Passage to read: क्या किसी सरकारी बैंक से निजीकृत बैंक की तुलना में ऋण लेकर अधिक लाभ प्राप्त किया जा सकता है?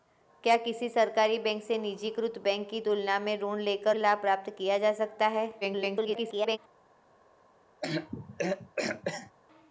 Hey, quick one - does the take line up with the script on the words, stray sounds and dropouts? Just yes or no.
no